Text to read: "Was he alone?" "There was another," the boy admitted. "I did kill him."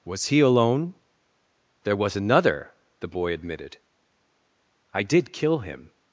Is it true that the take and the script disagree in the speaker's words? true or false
false